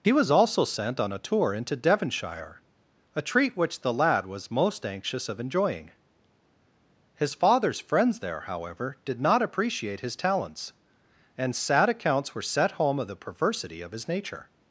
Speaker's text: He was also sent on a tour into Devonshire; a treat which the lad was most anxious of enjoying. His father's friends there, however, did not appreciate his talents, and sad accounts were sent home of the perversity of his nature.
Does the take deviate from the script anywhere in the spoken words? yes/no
yes